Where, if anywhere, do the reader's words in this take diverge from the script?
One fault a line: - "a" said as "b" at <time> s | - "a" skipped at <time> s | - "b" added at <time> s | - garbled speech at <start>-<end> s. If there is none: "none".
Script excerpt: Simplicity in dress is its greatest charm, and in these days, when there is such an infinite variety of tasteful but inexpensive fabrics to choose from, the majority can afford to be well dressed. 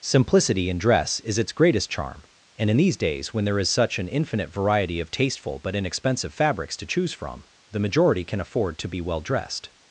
none